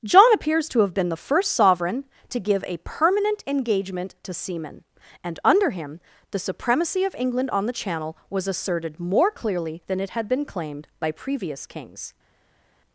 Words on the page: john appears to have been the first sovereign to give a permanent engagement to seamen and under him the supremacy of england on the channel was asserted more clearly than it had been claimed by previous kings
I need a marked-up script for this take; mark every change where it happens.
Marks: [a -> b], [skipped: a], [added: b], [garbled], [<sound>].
john appears to have been the first sovereign to give a permanent engagement to seamen and under him the supremacy of england on the channel was asserted more clearly than it had been claimed by previous kings